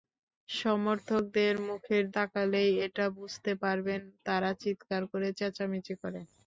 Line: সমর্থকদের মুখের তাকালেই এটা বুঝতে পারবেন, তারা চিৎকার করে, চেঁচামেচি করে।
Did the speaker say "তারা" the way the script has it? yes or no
yes